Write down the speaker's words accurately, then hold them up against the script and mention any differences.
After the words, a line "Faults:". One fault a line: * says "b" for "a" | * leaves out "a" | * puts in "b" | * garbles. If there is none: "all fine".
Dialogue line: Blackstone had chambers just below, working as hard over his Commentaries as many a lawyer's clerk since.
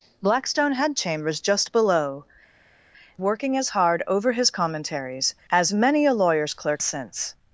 Blackstone had chambers just below, working as hard over his Commentaries as many a lawyer's clerk since.
Faults:
all fine